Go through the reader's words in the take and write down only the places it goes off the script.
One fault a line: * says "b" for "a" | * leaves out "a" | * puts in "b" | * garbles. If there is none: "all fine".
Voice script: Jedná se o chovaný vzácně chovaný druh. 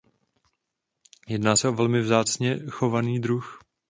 * says "velmi" for "chovaný"